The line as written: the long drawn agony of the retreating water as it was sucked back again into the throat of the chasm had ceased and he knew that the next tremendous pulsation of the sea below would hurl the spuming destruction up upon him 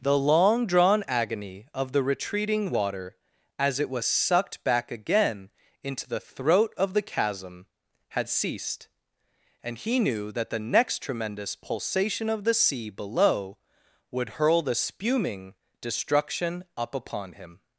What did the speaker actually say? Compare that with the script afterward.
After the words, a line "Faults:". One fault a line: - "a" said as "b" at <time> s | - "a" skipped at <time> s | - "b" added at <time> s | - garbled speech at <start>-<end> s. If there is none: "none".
the long drawn agony of the retreating water as it was sucked back again into the throat of the chasm had ceased and he knew that the next tremendous pulsation of the sea below would hurl the spuming destruction up upon him
Faults:
none